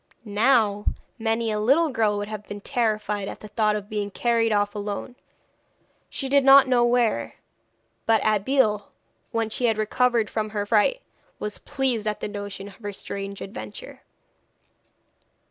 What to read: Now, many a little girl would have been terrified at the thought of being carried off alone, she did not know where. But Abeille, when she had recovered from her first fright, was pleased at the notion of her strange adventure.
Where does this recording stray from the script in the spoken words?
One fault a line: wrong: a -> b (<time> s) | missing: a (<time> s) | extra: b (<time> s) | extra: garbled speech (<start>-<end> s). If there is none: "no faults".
missing: first (10.7 s)